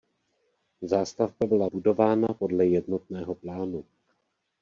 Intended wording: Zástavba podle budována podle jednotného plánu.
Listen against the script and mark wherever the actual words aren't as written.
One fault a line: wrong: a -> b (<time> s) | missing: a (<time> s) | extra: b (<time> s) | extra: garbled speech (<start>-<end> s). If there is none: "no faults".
wrong: podle -> byla (1.4 s)